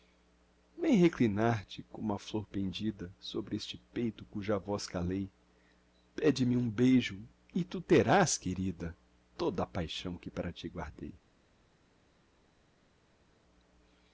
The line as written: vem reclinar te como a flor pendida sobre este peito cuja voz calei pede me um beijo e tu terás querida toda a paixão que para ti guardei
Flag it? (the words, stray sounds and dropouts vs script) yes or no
no